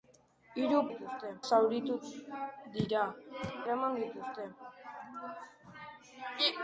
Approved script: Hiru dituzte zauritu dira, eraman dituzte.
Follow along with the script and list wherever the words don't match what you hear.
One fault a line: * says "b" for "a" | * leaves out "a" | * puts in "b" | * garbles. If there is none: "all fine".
all fine